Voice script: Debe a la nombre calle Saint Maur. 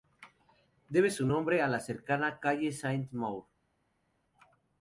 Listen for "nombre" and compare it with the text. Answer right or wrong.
wrong